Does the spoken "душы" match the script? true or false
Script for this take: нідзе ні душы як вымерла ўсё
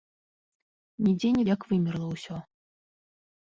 false